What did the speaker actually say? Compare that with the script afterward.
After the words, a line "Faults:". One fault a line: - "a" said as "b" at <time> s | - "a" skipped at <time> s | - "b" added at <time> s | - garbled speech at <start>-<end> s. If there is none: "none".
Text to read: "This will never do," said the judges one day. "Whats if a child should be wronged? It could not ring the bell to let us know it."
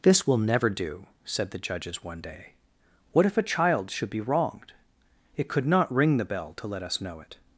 "This will never do," said the judges one day. "What if a child should be wronged? It could not ring the bell to let us know it."
Faults:
- "Whats" said as "What" at 3.1 s